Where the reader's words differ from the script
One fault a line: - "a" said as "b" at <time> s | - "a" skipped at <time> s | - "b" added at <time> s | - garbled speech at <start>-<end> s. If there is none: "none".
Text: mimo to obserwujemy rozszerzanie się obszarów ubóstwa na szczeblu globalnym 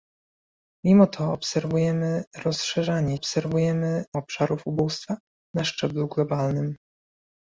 - "się" said as "obserwujemy" at 3.1 s